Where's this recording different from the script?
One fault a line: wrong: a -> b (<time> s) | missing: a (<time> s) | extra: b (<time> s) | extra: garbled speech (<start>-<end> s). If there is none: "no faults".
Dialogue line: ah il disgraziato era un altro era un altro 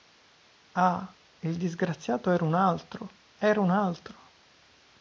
no faults